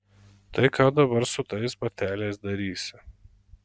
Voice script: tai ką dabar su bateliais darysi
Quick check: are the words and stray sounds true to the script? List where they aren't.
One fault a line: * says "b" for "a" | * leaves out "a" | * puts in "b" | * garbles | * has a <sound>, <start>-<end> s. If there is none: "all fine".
* puts in "tais"